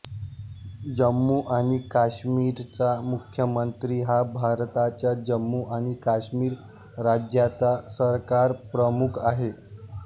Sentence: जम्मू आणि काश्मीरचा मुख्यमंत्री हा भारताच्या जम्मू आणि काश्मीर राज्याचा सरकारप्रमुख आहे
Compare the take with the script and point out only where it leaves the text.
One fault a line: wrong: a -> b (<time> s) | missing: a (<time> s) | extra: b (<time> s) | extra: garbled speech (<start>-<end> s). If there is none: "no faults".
no faults